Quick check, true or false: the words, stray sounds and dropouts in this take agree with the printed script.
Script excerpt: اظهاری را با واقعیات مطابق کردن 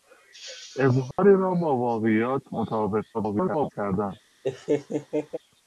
false